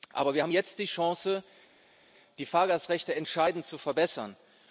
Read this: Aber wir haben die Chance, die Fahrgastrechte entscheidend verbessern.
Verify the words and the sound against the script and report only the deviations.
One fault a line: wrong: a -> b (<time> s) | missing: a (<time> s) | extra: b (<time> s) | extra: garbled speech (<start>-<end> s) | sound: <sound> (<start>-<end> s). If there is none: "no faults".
extra: jetzt (0.5 s)
extra: zu (3.7 s)